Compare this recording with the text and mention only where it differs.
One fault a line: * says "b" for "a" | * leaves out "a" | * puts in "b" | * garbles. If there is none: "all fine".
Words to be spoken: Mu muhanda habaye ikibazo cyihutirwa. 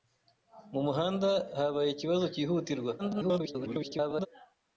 * garbles